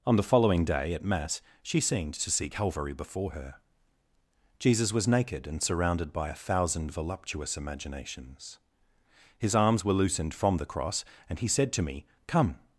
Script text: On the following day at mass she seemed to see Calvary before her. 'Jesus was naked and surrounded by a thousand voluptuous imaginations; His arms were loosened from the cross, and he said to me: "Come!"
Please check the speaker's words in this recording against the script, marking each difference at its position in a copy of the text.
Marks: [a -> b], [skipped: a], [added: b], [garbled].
On the following day at mass she seemed to see Calvary before her. 'Jesus was naked and surrounded by a thousand voluptuous imaginations; His arms were loosened from the cross, and he said to me: "Come!"